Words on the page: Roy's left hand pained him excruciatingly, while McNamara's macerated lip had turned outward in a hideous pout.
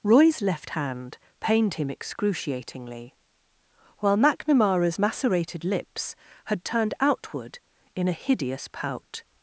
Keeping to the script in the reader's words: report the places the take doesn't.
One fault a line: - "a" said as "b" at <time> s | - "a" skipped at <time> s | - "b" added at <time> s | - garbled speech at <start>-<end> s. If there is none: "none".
- "lip" said as "lips" at 5.6 s